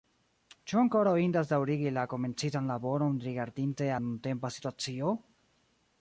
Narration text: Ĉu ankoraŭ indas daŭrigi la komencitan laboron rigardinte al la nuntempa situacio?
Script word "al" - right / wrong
wrong